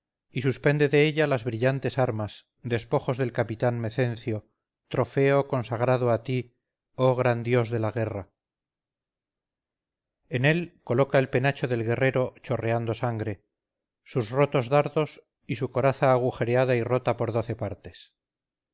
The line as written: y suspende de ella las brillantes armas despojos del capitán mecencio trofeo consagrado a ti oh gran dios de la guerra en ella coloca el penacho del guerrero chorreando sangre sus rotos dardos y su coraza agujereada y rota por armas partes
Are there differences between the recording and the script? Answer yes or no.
yes